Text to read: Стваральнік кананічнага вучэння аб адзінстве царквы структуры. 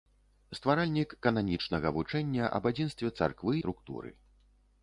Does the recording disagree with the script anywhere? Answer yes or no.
no